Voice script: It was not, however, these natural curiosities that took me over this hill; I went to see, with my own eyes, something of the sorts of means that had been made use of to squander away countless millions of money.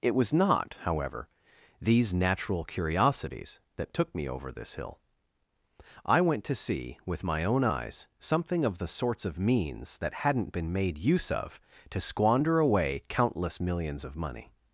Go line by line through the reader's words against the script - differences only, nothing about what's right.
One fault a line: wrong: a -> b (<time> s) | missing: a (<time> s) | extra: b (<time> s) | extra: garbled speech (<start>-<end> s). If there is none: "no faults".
wrong: had -> hadn't (10.2 s)